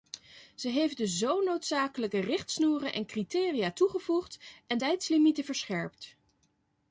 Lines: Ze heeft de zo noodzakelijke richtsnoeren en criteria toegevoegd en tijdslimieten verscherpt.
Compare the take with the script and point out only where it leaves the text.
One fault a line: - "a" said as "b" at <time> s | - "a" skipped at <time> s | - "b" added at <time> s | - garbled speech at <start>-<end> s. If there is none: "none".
none